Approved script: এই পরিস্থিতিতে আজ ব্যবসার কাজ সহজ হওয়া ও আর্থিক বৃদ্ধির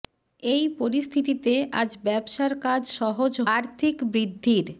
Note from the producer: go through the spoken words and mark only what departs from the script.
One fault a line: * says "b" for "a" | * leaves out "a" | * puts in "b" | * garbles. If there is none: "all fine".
* leaves out "হওয়া ও"